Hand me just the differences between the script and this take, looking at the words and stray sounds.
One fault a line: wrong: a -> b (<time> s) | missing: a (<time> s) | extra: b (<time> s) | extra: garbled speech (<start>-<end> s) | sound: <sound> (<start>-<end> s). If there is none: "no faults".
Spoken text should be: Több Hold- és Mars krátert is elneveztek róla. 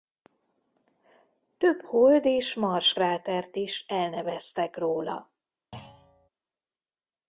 sound: thud (5.7-6.3 s)